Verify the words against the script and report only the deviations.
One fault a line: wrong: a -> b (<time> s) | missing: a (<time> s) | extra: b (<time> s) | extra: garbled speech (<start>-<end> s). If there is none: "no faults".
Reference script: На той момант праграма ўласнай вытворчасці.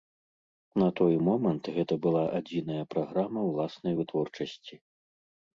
extra: гэта была адзіная (1.8 s)